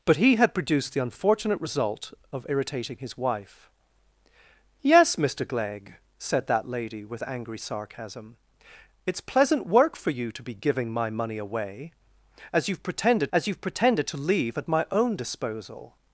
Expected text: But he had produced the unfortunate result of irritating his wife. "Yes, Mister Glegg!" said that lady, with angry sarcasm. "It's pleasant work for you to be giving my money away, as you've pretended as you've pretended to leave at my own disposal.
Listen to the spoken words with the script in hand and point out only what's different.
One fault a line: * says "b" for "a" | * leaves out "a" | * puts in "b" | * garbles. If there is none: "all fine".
all fine